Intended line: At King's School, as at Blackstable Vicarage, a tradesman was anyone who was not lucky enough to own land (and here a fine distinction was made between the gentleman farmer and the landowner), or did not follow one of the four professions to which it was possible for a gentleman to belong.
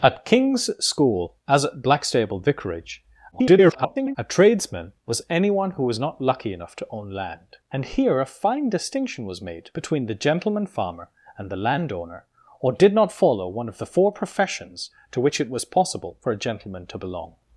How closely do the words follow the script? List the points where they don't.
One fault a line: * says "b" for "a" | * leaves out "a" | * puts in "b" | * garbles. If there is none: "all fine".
* garbles